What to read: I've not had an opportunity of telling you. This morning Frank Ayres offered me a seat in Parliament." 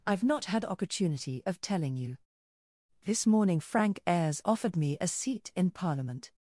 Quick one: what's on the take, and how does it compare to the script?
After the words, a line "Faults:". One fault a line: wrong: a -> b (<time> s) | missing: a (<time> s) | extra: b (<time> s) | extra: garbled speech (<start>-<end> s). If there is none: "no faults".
I've not had opportunity of telling you. This morning Frank Ayres offered me a seat in Parliament."
Faults:
missing: an (0.7 s)